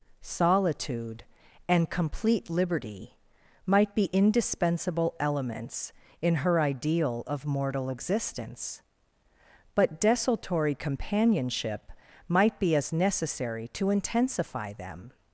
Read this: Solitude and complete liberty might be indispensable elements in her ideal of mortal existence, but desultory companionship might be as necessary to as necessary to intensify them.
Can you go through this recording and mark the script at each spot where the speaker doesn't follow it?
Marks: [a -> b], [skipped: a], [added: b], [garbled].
Solitude and complete liberty might be indispensable elements in her ideal of mortal existence, but desultory companionship might be as necessary to [skipped: as necessary to] intensify them.